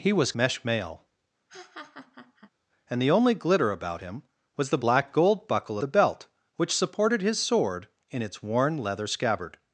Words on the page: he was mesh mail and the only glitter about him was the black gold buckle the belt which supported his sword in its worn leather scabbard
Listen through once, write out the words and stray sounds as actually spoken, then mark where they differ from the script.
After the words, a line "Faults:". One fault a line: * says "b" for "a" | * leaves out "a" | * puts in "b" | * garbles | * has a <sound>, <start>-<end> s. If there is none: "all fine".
he was mesh mail and the only glitter about him was the black gold buckle the belt which supported his sword in its worn leather scabbard
Faults:
* has a laugh, 1.5-2.5 s